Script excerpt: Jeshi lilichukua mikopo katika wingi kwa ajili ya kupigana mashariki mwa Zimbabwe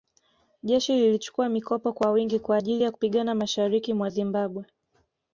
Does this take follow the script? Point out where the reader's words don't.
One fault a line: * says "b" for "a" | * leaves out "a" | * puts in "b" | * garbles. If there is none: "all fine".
* says "kwa" for "katika"